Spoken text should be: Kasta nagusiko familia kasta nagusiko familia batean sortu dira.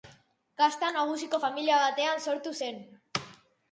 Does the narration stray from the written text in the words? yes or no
yes